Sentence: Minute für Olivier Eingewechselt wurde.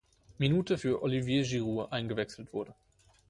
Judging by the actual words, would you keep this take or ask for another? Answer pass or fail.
fail